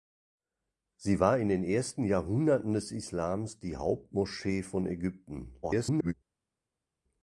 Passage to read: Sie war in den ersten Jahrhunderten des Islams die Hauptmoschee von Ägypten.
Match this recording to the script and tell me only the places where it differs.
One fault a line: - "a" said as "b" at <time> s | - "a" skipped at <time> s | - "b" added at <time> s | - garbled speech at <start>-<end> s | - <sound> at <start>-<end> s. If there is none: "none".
- garbled speech at 5.6-6.1 s